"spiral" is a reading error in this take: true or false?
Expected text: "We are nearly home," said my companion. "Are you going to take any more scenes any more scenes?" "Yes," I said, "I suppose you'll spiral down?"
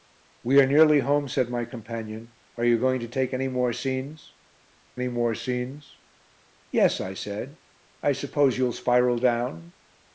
false